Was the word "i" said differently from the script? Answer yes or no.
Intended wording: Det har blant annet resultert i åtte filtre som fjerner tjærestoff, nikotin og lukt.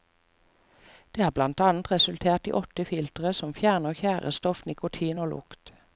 no